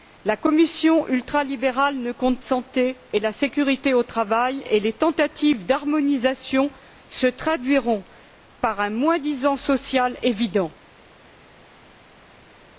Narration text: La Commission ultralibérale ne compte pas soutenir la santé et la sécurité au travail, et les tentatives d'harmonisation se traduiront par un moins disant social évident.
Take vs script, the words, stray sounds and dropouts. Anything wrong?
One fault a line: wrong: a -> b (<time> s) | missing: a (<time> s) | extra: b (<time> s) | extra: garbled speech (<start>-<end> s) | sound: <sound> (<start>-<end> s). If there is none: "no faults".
missing: pas soutenir la (2.4 s)